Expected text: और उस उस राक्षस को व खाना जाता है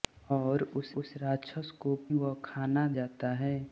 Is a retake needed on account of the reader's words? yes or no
no